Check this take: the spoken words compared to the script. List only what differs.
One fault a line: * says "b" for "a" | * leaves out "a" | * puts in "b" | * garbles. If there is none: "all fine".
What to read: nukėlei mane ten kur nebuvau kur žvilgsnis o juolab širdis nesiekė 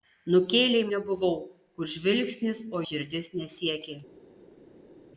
* leaves out "mane ten kur"
* leaves out "juolab"